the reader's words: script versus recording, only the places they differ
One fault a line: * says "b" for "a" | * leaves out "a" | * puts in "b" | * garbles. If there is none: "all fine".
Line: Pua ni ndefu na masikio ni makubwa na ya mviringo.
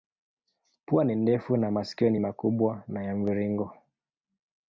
all fine